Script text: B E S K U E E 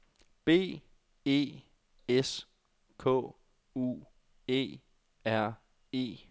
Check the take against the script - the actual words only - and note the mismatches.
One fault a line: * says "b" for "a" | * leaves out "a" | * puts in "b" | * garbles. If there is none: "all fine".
* puts in "R"